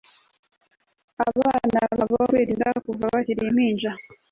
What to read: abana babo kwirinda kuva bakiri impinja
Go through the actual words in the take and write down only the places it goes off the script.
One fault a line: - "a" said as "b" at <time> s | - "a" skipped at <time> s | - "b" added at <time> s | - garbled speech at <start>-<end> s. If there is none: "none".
none